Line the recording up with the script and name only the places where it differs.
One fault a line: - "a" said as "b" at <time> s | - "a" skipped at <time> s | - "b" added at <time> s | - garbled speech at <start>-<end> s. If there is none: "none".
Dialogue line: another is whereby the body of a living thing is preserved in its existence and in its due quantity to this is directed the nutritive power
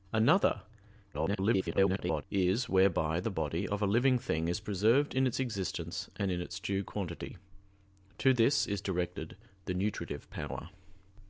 - garbled speech at 1.1-2.2 s